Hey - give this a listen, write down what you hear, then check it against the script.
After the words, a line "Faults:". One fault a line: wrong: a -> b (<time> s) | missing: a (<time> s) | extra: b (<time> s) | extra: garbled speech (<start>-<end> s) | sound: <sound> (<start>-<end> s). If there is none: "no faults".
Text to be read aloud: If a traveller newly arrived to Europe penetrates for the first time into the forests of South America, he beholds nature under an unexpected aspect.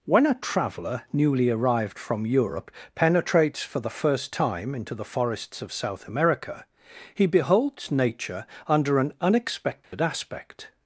When a traveller newly arrived from Europe penetrates for the first time into the forests of South America, he beholds nature under an unexpected aspect.
Faults:
wrong: If -> When (0.1 s)
wrong: to -> from (2.0 s)
sound: dropout (9.8-9.9 s)